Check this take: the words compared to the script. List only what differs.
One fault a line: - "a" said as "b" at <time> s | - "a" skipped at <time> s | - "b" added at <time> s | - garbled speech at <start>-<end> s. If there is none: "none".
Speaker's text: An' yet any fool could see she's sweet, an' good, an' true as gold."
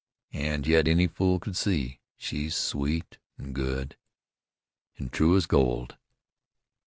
none